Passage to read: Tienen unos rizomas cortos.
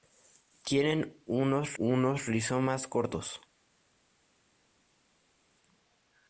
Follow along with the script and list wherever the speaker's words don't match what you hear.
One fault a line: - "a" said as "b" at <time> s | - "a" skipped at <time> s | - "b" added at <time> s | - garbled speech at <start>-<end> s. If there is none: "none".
- "unos" added at 1.8 s